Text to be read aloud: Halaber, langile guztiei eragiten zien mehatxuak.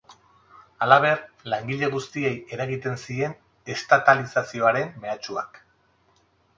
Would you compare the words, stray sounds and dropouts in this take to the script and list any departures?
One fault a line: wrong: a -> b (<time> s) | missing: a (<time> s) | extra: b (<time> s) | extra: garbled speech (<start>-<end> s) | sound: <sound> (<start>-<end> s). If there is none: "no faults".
extra: estatalizazioaren (3.8 s)